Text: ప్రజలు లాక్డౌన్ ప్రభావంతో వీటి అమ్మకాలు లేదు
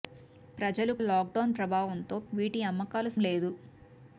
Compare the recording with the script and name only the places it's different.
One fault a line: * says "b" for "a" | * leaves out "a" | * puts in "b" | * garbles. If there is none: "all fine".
all fine